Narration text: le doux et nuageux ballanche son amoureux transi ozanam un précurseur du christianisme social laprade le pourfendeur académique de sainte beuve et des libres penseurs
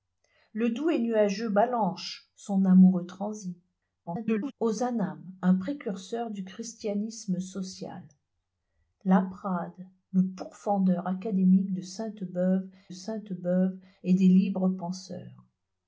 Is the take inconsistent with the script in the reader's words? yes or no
yes